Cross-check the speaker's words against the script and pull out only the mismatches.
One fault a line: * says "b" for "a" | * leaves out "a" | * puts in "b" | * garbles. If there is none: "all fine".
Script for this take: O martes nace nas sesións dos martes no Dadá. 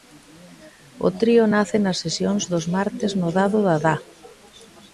* says "trío" for "martes"
* puts in "Dado"